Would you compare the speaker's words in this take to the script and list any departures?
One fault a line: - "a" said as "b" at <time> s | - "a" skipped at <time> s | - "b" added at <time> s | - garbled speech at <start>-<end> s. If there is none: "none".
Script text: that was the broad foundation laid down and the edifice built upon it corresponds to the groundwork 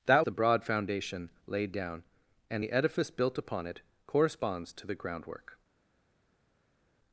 - "was" skipped at 0.2 s